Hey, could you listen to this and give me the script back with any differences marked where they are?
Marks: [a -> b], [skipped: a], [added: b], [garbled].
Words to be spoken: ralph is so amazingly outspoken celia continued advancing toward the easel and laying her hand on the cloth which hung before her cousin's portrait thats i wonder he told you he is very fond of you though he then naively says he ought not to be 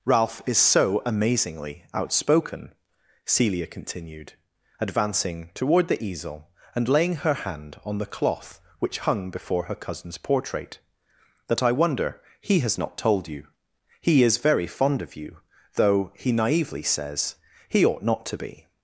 ralph is so amazingly outspoken celia continued advancing toward the easel and laying her hand on the cloth which hung before her cousin's portrait [thats -> that] i wonder he [added: has not] told you he is very fond of you though he [skipped: then] naively says he ought not to be